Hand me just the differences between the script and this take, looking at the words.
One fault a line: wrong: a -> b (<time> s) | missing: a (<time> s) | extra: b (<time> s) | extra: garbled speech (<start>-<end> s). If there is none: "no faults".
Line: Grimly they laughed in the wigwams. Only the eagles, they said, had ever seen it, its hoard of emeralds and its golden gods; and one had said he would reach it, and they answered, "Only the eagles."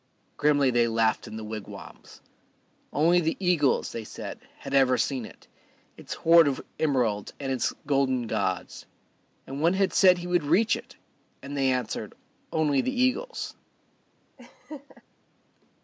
no faults